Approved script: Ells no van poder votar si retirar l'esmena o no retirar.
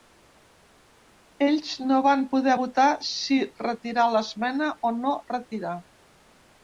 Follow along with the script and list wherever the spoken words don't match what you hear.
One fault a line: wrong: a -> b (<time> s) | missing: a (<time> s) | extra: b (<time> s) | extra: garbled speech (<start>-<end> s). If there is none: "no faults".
no faults